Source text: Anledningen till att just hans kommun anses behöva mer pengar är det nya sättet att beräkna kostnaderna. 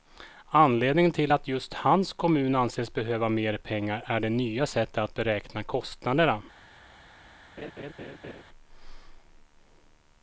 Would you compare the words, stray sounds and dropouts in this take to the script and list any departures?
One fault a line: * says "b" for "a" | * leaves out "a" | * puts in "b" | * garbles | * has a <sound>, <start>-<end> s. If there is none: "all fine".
* has a laugh, 7.6-8.4 s